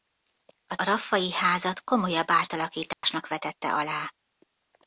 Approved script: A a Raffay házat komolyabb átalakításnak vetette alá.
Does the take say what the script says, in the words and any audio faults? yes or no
no